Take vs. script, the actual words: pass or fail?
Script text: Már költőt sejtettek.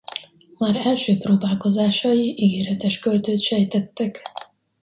fail